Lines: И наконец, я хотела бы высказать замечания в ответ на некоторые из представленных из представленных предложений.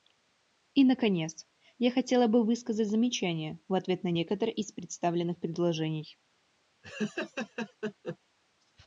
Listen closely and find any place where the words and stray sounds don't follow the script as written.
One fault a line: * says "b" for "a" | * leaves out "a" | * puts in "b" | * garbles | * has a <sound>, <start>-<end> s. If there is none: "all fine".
* leaves out "из представленных"
* has a laugh, 6.8-8.2 s